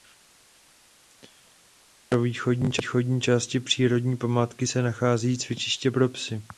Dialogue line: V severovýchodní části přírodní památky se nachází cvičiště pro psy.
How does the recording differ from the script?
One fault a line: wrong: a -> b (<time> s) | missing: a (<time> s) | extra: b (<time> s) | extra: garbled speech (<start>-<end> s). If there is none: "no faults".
no faults